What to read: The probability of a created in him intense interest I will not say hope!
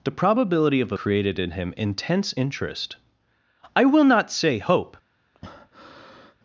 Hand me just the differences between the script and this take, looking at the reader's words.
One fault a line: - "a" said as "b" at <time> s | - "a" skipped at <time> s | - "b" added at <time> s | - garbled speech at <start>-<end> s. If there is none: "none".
none